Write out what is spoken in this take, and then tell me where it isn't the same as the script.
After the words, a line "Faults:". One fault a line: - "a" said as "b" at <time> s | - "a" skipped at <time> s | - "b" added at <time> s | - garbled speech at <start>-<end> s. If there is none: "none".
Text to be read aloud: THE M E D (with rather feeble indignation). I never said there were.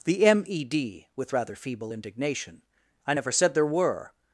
THE M E D (with rather feeble indignation). I never said there were.
Faults:
none